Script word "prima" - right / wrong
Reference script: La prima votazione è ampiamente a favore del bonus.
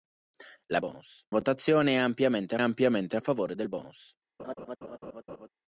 wrong